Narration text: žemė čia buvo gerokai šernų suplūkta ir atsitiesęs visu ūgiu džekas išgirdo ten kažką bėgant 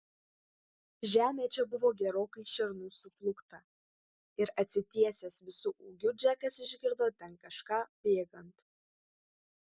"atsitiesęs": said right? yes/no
yes